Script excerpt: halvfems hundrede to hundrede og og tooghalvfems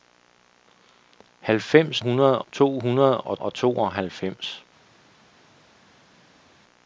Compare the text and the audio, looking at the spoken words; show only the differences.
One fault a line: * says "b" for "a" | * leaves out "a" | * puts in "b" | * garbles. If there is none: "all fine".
all fine